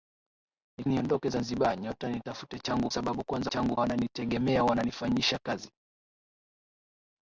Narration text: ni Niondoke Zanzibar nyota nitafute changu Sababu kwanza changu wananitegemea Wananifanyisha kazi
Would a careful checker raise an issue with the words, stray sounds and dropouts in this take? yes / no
no